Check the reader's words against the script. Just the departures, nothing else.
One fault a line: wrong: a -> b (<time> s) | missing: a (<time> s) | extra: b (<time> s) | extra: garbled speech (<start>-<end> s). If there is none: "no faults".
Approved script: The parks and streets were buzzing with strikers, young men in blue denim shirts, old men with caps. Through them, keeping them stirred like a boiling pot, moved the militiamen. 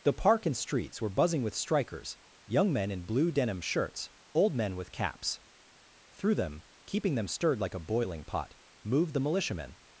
wrong: parks -> park (0.1 s)